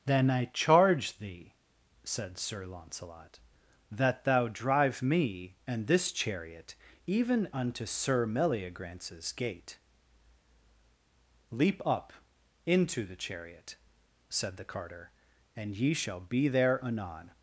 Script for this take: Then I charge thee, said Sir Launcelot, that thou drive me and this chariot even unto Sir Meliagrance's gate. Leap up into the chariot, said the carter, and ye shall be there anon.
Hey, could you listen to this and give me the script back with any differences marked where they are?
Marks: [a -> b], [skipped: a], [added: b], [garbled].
Then I charge thee, said Sir Launcelot, that thou drive me and this chariot even unto Sir Meliagrance's gate. Leap up into the chariot, said the carter, and ye shall be there anon.